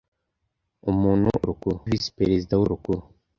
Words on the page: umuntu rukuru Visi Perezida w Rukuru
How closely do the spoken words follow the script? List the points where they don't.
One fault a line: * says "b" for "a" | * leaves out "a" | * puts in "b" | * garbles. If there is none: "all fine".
all fine